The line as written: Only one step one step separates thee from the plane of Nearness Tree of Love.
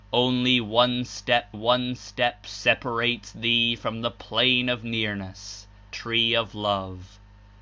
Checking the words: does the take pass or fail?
pass